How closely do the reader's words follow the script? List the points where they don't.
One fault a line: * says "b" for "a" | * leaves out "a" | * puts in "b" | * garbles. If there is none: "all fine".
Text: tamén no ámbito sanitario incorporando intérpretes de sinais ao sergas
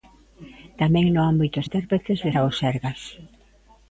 * leaves out "sanitario incorporando"
* leaves out "sinais"